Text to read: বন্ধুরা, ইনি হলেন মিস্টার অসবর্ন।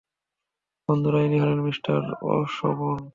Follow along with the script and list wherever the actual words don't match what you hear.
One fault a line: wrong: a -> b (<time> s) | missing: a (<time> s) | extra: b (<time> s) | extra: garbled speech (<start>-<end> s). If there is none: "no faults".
no faults